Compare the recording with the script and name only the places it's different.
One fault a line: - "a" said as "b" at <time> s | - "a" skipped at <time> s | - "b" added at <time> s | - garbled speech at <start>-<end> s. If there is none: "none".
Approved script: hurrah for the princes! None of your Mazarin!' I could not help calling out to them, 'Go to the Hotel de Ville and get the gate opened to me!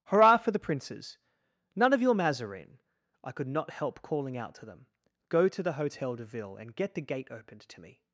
none